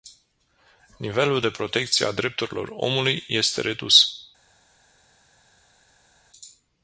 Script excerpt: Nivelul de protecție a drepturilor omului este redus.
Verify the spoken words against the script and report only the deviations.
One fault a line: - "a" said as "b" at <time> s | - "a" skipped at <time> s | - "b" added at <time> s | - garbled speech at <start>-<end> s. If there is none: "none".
none